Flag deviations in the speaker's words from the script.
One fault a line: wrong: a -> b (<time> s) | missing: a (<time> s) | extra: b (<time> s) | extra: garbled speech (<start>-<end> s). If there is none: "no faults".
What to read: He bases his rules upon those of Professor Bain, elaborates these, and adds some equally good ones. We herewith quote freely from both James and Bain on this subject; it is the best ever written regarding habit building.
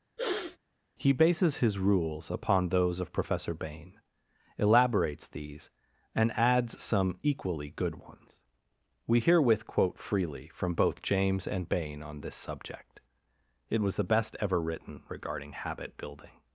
wrong: is -> was (13.8 s)